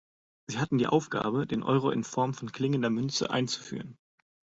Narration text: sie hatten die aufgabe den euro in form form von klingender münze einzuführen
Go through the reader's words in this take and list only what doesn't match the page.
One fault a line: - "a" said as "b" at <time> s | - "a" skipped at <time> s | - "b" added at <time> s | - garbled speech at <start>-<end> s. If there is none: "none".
- "form" skipped at 2.3 s